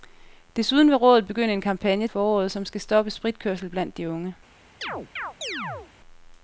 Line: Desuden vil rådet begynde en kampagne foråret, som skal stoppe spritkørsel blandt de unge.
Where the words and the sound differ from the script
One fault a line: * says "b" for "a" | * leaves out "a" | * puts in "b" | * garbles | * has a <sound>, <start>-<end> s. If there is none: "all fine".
* has a chirp, 4.8-5.9 s